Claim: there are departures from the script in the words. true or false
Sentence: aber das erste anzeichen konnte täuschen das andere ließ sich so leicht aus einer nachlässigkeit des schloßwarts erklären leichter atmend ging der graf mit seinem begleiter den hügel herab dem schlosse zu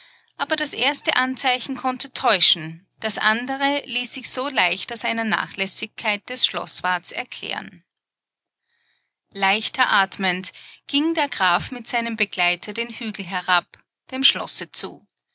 false